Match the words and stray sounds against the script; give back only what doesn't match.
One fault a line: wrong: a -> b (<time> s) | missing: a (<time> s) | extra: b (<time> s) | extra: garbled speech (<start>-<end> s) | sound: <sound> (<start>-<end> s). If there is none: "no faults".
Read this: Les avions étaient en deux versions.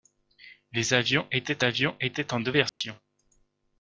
extra: avions étaient (1.6 s)
sound: dropout (2.7-2.8 s)